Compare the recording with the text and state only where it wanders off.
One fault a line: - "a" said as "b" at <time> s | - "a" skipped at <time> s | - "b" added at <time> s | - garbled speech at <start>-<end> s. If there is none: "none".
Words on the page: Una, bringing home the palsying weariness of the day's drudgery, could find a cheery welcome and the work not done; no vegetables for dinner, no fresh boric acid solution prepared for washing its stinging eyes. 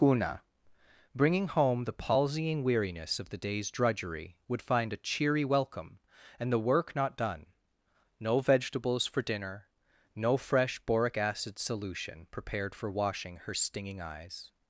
- "could" said as "would" at 4.5 s
- "its" said as "her" at 13.4 s